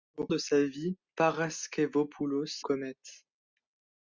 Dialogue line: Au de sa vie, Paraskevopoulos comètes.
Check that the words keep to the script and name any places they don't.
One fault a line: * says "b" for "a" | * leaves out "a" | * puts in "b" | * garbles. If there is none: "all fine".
all fine